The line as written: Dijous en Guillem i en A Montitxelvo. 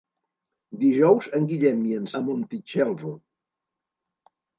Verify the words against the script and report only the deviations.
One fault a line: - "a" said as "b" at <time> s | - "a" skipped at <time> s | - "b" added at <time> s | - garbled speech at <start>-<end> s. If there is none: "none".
none